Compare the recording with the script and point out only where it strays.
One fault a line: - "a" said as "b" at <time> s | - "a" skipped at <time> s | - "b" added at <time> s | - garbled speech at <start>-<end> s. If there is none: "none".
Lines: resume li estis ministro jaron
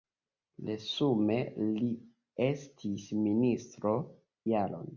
none